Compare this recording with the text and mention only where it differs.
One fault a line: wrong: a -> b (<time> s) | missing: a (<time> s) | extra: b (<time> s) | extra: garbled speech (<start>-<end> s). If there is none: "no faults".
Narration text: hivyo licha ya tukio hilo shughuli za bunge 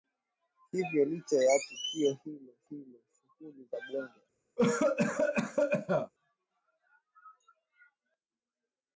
extra: hilo (2.7 s)